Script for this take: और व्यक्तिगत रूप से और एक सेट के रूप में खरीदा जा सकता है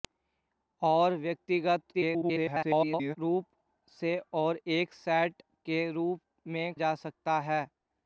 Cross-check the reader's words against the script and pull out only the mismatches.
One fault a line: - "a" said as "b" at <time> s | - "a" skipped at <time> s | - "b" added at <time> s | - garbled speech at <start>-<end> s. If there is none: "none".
- garbled speech at 1.9-3.2 s
- "खरीदा" skipped at 6.7 s